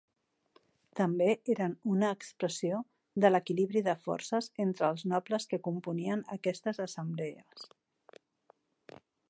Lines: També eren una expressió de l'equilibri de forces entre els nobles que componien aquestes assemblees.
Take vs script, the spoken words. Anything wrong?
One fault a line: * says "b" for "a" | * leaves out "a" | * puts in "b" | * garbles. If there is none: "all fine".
all fine